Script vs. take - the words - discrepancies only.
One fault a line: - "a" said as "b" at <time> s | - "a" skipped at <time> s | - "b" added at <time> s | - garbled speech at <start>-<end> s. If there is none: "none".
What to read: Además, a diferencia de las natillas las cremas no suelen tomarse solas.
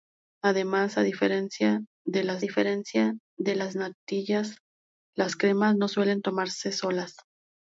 - "diferencia de las" added at 2.4 s